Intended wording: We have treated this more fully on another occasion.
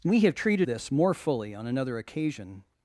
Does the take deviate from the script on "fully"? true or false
false